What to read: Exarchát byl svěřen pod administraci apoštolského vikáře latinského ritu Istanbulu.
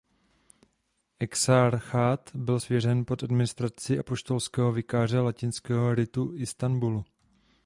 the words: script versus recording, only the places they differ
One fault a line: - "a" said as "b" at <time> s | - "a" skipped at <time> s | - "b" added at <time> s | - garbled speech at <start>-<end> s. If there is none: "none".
none